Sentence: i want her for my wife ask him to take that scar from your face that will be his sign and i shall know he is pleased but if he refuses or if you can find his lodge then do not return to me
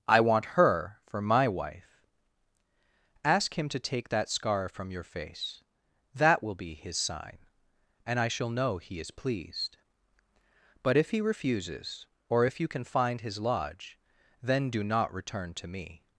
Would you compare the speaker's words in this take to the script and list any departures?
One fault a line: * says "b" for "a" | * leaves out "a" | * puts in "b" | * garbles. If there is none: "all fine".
all fine